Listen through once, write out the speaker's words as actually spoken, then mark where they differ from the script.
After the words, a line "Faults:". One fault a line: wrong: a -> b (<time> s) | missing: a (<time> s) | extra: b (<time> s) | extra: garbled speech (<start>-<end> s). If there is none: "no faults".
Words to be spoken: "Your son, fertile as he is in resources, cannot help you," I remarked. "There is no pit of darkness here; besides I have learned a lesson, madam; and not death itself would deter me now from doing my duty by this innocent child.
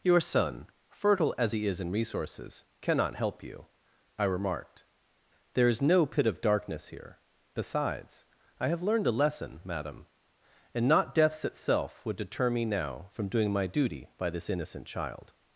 "Your son, fertile as he is in resources, cannot help you," I remarked. "There is no pit of darkness here; besides I have learned a lesson, madam; and not deaths itself would deter me now from doing my duty by this innocent child.
Faults:
wrong: death -> deaths (11.1 s)